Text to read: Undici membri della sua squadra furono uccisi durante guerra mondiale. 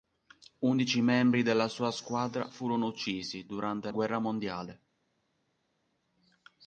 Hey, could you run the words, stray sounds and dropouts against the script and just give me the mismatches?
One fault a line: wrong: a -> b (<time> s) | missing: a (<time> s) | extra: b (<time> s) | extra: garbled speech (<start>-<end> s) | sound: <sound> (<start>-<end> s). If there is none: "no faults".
no faults